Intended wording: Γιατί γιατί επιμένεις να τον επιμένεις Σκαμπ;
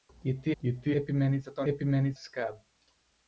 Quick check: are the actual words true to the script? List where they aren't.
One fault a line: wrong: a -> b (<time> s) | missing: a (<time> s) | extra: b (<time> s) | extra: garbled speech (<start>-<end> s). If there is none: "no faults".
no faults